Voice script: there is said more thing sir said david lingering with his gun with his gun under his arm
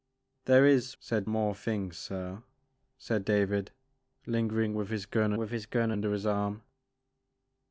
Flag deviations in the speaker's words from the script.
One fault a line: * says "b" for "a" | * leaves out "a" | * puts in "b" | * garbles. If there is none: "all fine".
all fine